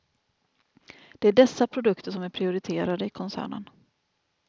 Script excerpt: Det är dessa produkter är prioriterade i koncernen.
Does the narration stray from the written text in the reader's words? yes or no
yes